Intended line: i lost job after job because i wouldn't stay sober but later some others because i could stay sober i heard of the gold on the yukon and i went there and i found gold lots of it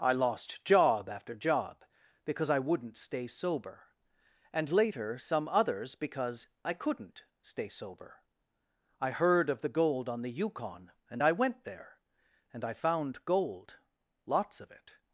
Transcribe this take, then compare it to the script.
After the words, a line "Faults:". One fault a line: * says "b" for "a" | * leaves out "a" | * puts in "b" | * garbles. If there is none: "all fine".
i lost job after job because i wouldn't stay sober and later some others because i couldn't stay sober i heard of the gold on the yukon and i went there and i found gold lots of it
Faults:
* says "and" for "but"
* says "couldn't" for "could"